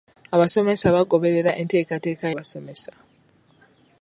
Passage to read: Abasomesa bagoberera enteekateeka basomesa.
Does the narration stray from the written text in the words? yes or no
no